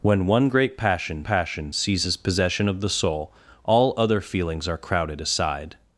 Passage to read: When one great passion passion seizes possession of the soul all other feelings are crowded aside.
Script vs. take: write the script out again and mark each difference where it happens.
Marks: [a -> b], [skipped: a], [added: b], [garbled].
When one great passion passion seizes possession of the soul all other feelings are crowded aside.